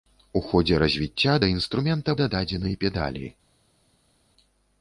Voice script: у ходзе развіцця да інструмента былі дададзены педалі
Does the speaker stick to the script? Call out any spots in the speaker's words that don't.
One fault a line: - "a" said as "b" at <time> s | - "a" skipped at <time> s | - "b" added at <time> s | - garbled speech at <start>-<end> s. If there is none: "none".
- "былі" skipped at 2.2 s